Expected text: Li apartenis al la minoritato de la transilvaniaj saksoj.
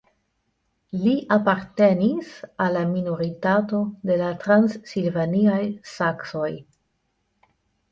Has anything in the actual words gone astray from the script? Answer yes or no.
no